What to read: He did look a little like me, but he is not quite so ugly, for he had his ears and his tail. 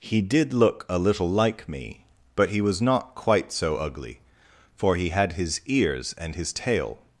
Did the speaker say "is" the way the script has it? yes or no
no